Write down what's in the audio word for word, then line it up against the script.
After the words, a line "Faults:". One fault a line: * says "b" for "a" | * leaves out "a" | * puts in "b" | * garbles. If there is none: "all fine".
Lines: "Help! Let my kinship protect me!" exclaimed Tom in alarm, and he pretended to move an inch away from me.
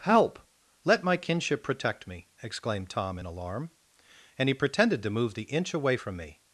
"Help! Let my kinship protect me!" exclaimed Tom in alarm, and he pretended to move the inch away from me.
Faults:
* says "the" for "an"